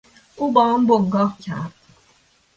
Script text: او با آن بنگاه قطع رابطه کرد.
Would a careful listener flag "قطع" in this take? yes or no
yes